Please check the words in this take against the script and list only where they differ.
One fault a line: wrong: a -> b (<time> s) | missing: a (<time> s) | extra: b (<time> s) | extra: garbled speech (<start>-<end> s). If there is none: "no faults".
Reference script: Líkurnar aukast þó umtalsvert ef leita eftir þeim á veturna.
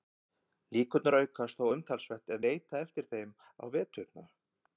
no faults